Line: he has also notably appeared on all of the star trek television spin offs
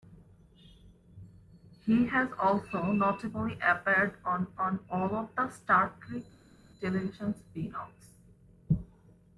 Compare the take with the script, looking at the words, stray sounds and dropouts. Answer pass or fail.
fail